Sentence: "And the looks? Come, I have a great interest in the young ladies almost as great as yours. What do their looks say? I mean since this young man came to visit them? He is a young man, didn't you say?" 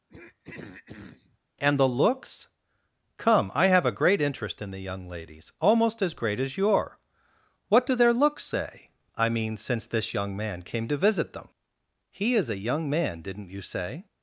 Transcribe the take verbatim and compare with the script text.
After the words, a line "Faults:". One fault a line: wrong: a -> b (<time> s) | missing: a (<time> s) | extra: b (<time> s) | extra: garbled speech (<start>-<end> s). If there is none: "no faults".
"And the looks? Come, I have a great interest in the young ladies almost as great as your. What do their looks say? I mean since this young man came to visit them? He is a young man, didn't you say?"
Faults:
wrong: yours -> your (6.6 s)